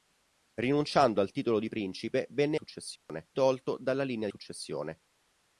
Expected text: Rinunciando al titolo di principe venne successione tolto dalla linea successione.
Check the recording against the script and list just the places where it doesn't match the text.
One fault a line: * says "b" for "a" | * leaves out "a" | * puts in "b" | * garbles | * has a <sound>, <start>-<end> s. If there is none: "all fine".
* has a dropout, 3.0-3.1 s